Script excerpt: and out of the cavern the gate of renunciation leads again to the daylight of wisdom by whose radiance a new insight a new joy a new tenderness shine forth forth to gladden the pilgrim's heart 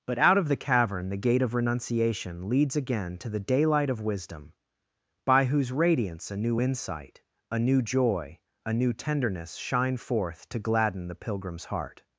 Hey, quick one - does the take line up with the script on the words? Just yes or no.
no